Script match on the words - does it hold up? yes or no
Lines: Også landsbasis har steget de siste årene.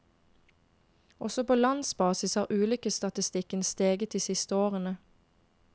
no